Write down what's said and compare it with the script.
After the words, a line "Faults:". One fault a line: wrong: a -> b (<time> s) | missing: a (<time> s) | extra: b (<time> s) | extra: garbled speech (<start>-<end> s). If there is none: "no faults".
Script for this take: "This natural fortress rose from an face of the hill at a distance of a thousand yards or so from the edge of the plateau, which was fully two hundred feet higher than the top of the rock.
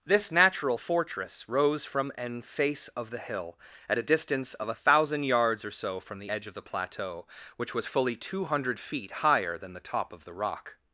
"This natural fortress rose from an face of the hill at a distance of a thousand yards or so from the edge of the plateau, which was fully two hundred feet higher than the top of the rock.
Faults:
no faults